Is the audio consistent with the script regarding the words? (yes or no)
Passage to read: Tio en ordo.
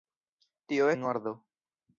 yes